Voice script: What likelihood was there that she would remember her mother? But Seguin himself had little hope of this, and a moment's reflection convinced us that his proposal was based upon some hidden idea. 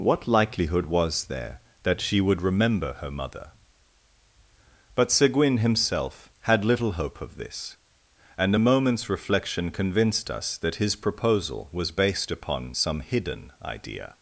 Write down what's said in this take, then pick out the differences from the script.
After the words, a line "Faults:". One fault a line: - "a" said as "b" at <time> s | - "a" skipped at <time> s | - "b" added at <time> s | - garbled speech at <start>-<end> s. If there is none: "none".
What likelihood was there that she would remember her mother? But Seguin himself had little hope of this, and a moment's reflection convinced us that his proposal was based upon some hidden idea.
Faults:
none